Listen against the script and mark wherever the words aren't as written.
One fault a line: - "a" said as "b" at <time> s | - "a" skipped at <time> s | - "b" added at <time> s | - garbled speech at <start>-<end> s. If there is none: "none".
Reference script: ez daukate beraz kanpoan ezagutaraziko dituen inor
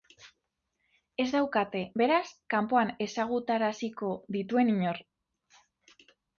none